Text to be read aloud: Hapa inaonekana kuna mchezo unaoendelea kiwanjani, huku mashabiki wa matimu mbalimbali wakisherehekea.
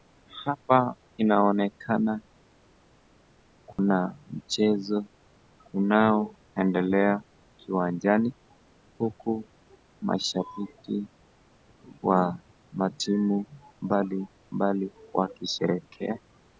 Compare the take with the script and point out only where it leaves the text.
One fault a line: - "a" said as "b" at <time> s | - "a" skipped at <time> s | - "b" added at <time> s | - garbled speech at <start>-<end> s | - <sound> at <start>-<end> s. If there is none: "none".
- dropout at 3.7-3.8 s